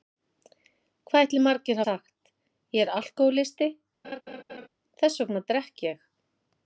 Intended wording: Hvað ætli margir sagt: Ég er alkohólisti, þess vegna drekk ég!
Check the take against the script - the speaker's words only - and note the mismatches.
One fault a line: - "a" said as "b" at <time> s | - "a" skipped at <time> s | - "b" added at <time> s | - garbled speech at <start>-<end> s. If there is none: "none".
none